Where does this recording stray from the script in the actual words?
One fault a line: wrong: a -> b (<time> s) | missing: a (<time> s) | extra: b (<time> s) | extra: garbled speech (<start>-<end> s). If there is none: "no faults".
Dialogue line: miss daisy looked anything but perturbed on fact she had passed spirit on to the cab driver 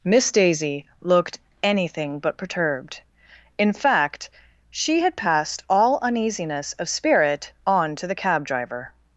wrong: on -> in (3.6 s)
extra: all uneasiness of (5.7 s)